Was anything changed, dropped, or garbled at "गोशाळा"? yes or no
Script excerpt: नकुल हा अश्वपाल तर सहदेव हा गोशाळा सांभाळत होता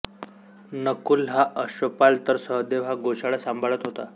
no